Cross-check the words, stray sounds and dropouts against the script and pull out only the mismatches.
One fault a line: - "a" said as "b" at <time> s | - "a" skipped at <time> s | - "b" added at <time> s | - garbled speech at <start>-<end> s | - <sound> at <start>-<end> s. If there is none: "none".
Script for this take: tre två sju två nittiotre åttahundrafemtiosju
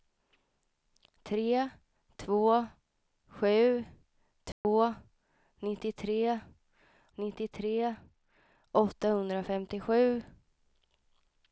- dropout at 4.5-4.6 s
- "nittiotre" added at 7.1 s